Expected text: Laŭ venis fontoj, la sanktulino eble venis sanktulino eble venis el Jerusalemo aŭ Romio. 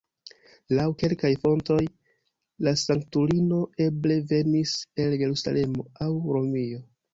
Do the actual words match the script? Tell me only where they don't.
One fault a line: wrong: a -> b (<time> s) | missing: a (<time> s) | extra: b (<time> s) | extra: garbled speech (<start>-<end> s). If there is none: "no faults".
wrong: venis -> kelkaj (1.0 s)
missing: sanktulino eble venis (4.8 s)